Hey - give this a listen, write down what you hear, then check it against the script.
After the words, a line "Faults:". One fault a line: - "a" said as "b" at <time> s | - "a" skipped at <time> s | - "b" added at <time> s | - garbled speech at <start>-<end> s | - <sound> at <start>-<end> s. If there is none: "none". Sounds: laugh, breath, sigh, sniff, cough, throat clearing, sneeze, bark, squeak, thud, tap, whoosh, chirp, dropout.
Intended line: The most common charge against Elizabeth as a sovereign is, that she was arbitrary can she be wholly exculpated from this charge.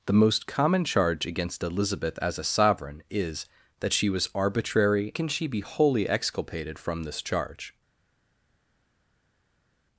The most common charge against Elizabeth as a sovereign is, that she was arbitrary can she be wholly exculpated from this charge.
Faults:
none